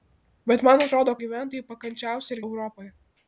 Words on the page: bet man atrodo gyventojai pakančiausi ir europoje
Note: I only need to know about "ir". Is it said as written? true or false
true